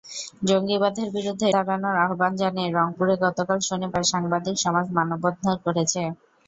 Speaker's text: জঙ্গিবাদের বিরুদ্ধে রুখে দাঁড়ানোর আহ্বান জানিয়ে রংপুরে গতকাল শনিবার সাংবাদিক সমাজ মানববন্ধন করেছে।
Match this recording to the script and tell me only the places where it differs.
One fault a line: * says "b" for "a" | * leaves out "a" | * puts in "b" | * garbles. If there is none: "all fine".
* leaves out "রুখে"